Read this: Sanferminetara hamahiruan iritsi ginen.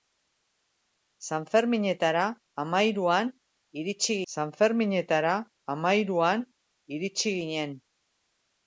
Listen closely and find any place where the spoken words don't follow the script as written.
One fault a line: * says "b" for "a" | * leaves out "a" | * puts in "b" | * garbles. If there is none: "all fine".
* puts in "sanferminetara hamahiruan iritsi"